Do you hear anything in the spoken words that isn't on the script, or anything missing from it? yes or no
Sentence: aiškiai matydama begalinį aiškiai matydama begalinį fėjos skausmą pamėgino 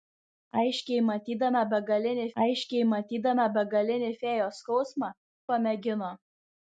no